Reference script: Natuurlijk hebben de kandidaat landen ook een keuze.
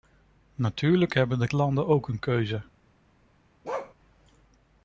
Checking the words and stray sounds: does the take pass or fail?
fail